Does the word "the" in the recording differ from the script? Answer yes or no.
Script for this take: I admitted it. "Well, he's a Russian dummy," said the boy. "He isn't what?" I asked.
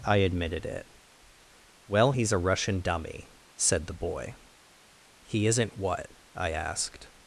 no